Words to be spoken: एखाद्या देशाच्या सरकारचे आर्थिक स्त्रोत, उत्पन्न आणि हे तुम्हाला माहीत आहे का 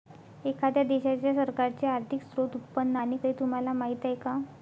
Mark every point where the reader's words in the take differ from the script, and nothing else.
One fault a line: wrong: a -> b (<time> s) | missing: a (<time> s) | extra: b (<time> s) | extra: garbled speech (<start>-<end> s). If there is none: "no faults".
no faults